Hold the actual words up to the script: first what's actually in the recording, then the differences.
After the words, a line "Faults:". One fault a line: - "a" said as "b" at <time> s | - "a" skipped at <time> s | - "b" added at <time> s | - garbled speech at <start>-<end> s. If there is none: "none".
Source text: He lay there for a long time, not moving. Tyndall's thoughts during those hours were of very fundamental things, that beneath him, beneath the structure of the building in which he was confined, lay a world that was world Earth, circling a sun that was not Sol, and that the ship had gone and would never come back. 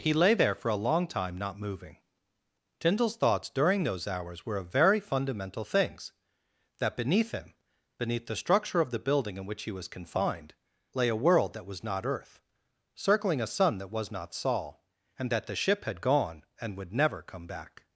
He lay there for a long time, not moving. Tyndall's thoughts during those hours were of very fundamental things, that beneath him, beneath the structure of the building in which he was confined, lay a world that was not Earth, circling a sun that was not Sol, and that the ship had gone and would never come back.
Faults:
- "world" said as "not" at 11.8 s